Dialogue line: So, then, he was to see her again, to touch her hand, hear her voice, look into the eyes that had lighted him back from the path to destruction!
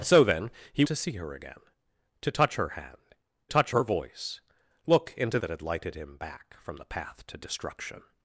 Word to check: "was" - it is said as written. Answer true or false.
false